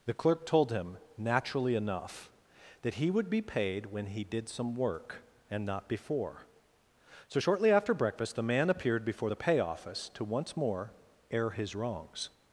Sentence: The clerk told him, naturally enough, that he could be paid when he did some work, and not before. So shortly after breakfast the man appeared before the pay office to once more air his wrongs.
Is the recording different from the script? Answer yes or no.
yes